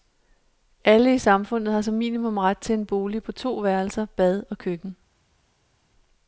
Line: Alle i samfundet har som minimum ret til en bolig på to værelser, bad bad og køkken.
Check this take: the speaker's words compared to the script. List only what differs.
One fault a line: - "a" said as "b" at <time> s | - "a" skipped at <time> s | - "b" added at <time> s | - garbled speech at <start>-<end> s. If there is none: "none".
- "bad" skipped at 4.4 s